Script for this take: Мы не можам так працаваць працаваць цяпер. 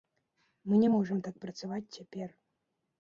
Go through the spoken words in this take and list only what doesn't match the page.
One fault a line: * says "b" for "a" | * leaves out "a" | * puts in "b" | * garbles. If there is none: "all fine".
* leaves out "працаваць"